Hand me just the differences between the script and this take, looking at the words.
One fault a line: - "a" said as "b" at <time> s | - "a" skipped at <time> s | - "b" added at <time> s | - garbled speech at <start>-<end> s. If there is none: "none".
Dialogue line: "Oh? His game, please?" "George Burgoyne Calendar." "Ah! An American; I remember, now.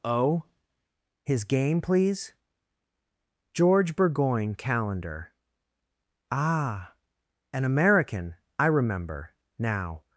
none